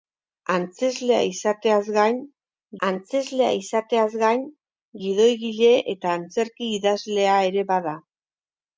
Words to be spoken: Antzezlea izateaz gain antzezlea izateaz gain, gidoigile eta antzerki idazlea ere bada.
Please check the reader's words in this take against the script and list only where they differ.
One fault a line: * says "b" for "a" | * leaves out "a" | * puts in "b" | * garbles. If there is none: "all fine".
all fine